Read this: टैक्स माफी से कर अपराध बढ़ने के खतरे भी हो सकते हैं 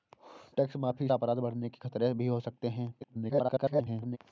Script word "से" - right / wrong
wrong